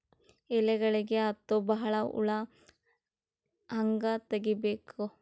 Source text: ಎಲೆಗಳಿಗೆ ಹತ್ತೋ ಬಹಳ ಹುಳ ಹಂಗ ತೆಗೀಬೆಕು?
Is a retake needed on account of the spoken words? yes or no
no